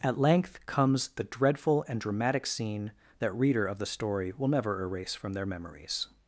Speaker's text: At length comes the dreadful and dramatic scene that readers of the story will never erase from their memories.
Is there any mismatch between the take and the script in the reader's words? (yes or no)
yes